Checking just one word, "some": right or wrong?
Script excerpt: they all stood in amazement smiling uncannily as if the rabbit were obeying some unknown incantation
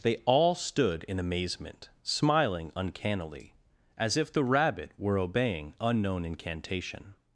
wrong